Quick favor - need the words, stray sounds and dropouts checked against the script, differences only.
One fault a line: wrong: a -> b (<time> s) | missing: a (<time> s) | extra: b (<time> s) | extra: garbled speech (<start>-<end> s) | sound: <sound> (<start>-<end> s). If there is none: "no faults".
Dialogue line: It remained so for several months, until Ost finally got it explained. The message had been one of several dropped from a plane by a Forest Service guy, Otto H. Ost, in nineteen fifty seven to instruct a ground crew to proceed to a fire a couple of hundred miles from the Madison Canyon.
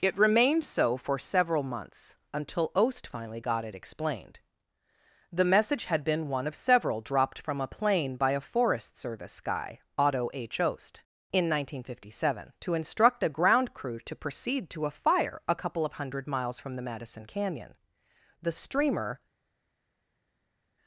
extra: The streamer (18.4 s)